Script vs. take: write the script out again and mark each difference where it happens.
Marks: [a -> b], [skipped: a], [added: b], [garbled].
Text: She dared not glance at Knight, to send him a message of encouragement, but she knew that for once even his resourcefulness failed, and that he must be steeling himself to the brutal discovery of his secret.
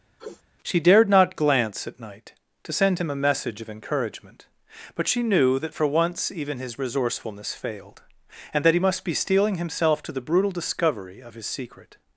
She dared not glance at Knight, to send him a message of encouragement, but she knew that for once even his resourcefulness failed, and that he must be steeling himself to the brutal discovery of his secret.